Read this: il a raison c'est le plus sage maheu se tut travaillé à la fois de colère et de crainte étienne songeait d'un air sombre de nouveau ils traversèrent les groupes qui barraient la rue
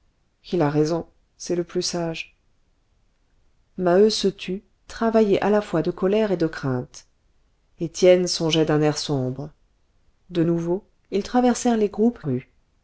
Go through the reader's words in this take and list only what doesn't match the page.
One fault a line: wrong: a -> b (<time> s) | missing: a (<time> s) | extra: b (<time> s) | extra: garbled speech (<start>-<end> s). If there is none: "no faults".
missing: qui barraient la (12.2 s)